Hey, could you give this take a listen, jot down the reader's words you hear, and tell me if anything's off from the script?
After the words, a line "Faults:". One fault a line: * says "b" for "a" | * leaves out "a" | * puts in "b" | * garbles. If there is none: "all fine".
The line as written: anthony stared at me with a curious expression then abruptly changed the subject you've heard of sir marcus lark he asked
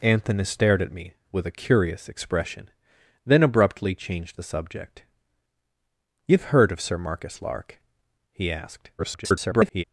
anthony stared at me with a curious expression then abruptly changed the subject you've heard of sir marcus lark he asked [garbled]
Faults:
* garbles